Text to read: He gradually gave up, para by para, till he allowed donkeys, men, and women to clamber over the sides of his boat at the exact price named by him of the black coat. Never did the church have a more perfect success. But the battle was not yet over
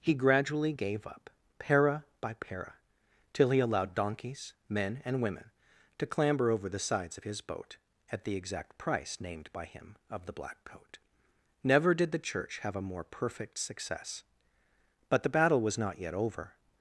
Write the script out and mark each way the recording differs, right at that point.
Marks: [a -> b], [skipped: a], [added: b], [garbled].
He gradually gave up, para by para, till he allowed donkeys, men, and women to clamber over the sides of his boat at the exact price named by him of the black coat. Never did the church have a more perfect success. But the battle was not yet over